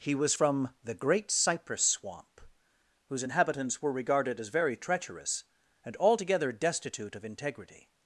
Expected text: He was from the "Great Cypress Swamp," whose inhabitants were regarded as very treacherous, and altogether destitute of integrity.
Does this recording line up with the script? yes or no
yes